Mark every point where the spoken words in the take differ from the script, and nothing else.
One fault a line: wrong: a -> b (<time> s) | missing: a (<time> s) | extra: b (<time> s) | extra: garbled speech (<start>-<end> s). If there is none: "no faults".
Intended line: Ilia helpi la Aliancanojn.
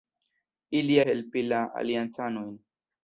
no faults